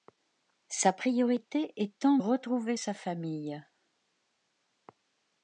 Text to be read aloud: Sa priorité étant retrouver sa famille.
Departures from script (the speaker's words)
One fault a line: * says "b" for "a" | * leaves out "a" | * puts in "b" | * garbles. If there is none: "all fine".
all fine